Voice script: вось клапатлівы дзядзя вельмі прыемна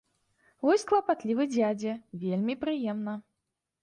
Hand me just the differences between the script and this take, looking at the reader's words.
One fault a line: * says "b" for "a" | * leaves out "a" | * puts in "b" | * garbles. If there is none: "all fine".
all fine